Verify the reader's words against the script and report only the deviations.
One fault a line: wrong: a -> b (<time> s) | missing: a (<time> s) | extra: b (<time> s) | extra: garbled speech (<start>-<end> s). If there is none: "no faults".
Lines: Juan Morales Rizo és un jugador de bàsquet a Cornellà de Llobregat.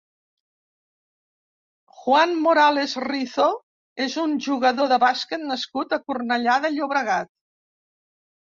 extra: nascut (5.5 s)